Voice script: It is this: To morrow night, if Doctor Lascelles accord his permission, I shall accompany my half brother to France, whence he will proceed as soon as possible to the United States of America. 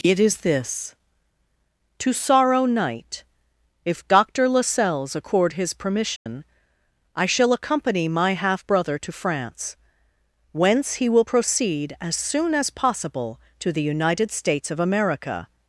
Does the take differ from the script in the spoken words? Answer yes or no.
yes